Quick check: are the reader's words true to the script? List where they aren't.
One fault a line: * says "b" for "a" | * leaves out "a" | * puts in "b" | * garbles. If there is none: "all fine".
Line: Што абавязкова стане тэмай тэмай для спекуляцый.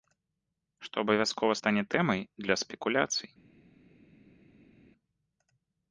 * leaves out "тэмай"